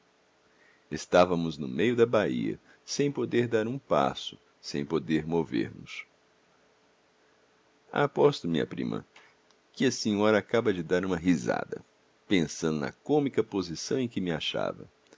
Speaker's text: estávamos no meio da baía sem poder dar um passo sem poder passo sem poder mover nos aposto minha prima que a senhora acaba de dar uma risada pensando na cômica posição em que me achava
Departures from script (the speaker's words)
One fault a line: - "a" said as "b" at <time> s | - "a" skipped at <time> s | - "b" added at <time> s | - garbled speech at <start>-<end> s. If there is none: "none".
- "passo sem poder" skipped at 5.2 s